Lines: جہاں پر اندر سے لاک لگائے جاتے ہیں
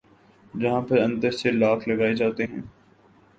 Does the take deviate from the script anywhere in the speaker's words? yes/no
no